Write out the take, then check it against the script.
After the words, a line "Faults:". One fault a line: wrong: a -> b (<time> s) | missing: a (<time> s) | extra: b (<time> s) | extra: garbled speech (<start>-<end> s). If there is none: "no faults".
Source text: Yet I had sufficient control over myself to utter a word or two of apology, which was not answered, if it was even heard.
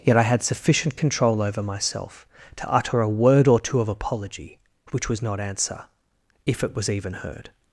Yet I had sufficient control over myself to utter a word or two of apology, which was not answer, if it was even heard.
Faults:
wrong: answered -> answer (5.4 s)